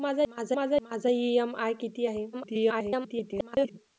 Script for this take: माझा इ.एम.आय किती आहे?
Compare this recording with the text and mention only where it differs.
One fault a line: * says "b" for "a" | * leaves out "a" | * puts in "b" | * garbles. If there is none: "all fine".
* puts in "माझा"
* garbles